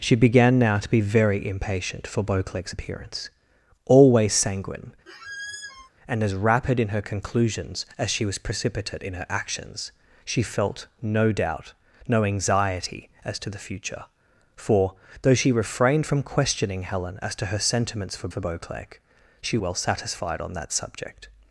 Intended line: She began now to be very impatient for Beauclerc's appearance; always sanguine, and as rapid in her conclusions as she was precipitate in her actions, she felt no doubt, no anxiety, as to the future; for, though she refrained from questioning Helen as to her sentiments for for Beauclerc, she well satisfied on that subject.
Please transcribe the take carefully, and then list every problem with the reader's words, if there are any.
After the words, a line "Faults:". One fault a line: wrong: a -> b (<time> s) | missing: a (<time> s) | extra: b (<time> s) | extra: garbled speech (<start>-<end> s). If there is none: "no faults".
She began now to be very impatient for Beauclerc's appearance; always sanguine, and as rapid in her conclusions as she was precipitate in her actions, she felt no doubt, no anxiety, as to the future; for, though she refrained from questioning Helen as to her sentiments for for Beauclerc, she well satisfied on that subject.
Faults:
no faults